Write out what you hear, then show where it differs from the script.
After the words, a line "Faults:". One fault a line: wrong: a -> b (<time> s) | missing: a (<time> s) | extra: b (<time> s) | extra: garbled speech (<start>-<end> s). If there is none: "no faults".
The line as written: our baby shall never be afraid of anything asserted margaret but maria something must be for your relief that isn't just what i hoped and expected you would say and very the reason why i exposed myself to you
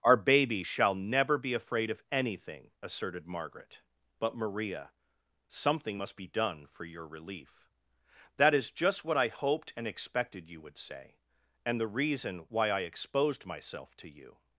our baby shall never be afraid of anything asserted margaret but maria something must be done for your relief that is just what i hoped and expected you would say and the reason why i exposed myself to you
Faults:
extra: done (6.3 s)
wrong: isn't -> is (8.5 s)
missing: very (11.8 s)